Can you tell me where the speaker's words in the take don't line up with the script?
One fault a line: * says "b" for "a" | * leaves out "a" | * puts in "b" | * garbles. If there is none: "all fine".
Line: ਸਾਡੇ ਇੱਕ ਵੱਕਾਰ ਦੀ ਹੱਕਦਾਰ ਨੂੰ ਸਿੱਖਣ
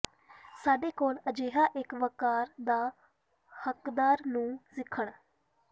* puts in "ਕੋਲ ਅਜਿਹਾ"
* says "ਦਾ" for "ਦੀ"